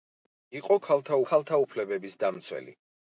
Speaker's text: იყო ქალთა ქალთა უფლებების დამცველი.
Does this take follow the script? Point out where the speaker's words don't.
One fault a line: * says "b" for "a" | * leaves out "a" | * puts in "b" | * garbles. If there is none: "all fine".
all fine